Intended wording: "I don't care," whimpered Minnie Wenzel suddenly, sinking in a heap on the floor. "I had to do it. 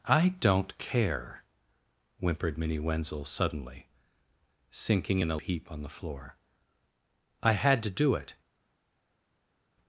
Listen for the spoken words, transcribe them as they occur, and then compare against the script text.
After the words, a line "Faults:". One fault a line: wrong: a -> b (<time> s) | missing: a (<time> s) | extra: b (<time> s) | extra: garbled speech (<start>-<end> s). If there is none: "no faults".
"I don't care," whimpered Minnie Wenzel suddenly, sinking in a heap on the floor. "I had to do it.
Faults:
no faults